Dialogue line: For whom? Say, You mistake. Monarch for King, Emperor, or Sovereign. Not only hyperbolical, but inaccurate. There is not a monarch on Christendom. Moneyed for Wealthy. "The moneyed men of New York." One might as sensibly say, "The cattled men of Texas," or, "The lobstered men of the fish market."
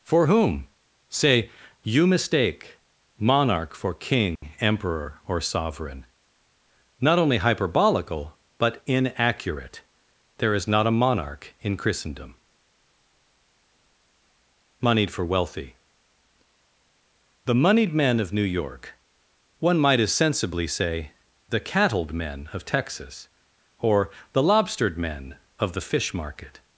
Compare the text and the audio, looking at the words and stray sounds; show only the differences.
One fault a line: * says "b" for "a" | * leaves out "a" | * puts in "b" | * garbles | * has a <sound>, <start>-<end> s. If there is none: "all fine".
* has a dropout, 4.4-4.4 s
* says "in" for "on"